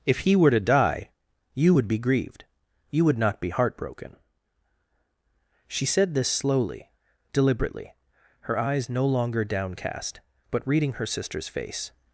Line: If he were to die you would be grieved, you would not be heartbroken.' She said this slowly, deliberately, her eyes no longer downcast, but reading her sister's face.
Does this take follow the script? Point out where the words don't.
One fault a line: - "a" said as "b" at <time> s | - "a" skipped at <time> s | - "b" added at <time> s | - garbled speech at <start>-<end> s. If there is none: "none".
none